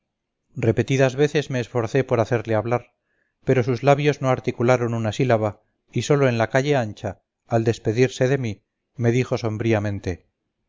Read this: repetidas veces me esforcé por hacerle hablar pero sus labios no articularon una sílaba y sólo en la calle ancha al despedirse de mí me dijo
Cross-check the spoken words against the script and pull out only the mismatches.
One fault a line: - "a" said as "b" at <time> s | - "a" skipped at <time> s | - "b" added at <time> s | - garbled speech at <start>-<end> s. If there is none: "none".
none